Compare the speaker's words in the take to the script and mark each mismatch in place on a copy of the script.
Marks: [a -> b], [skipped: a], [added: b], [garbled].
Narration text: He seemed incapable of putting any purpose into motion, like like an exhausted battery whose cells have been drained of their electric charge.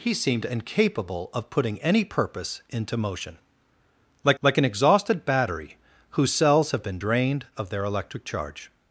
He seemed incapable of putting any purpose into motion, like like an exhausted battery whose cells have been drained of their electric charge.